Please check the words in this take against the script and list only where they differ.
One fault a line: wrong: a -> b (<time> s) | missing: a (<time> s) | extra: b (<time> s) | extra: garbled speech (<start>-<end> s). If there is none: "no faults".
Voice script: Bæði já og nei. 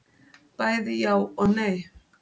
no faults